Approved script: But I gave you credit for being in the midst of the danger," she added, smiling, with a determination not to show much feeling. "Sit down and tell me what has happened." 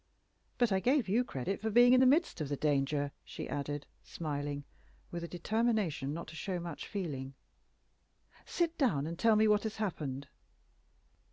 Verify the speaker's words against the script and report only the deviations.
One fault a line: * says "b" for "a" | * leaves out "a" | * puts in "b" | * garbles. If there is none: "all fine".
all fine